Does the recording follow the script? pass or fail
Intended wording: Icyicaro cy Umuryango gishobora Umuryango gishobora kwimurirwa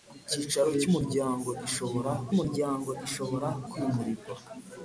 pass